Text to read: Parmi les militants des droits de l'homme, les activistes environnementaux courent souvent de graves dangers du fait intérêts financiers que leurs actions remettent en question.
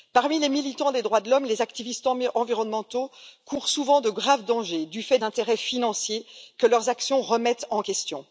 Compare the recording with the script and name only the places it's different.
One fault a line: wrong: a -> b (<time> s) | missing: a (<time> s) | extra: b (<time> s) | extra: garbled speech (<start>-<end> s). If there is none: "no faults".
no faults